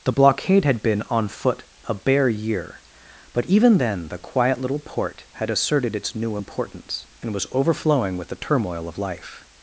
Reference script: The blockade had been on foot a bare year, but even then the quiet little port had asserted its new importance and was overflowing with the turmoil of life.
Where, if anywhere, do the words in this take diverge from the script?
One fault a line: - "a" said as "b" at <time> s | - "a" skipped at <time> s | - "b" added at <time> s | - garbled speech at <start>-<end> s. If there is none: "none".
none